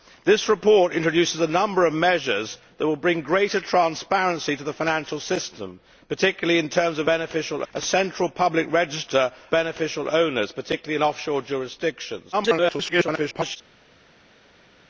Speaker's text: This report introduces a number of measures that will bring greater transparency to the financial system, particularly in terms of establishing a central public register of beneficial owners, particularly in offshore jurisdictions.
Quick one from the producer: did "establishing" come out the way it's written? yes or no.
no